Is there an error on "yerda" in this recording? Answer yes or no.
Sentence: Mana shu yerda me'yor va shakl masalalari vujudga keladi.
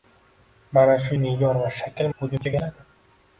yes